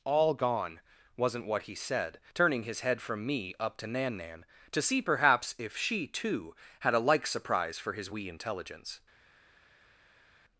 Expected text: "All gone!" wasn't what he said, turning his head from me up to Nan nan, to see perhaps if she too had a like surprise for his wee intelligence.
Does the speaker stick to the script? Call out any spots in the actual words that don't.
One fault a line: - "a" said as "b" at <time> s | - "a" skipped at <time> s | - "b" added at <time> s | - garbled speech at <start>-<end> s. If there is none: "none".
none